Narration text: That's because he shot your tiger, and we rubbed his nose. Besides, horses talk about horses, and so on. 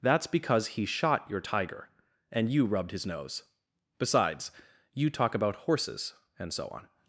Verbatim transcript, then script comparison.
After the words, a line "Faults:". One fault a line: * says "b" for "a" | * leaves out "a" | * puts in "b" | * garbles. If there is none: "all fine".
That's because he shot your tiger, and you rubbed his nose. Besides, you talk about horses, and so on.
Faults:
* says "you" for "we"
* says "you" for "horses"